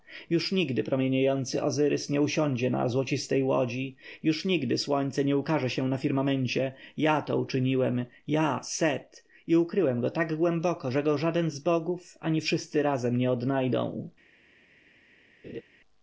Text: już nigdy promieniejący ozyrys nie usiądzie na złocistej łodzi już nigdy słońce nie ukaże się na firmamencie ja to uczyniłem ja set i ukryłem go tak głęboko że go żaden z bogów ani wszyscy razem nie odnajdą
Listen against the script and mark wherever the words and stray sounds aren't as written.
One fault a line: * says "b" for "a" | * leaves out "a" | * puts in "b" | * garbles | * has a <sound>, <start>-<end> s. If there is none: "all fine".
* has a laugh, 15.4-15.6 s